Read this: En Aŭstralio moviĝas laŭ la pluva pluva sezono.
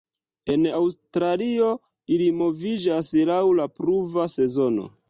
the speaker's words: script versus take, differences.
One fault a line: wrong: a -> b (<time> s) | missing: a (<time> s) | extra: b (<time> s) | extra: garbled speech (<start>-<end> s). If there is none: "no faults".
extra: ili (2.2 s)
missing: pluva (4.3 s)